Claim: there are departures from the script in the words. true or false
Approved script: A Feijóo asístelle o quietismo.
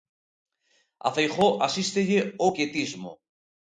false